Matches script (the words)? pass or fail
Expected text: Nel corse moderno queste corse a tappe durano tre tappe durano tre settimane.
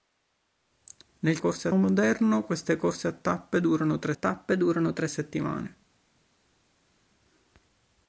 pass